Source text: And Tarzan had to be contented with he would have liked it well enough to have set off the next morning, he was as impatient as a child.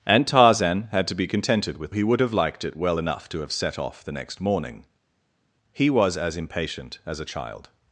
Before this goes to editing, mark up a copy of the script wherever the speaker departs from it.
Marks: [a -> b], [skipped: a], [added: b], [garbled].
And Tarzan had to be contented with he would have liked it well enough to have set off the next morning, he was as impatient as a child.